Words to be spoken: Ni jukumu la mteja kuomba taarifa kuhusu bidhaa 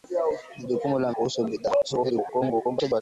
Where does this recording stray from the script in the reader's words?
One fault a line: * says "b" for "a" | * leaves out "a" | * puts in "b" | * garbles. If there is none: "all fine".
* leaves out "mteja kuomba taarifa"
* garbles